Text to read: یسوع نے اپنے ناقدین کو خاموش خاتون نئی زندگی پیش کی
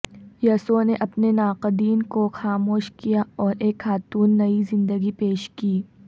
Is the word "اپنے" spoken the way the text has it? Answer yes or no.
yes